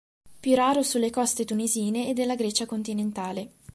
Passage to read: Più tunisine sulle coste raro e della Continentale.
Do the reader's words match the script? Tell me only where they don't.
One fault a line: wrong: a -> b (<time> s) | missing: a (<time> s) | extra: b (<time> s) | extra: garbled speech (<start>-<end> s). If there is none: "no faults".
wrong: tunisine -> raro (0.6 s)
wrong: raro -> tunisine (1.4 s)
extra: Grecia (2.4 s)